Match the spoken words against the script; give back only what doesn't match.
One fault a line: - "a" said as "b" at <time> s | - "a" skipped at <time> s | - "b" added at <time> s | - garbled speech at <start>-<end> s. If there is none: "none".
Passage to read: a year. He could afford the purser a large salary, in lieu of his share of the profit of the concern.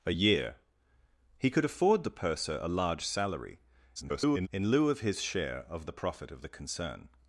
- garbled speech at 4.0-4.5 s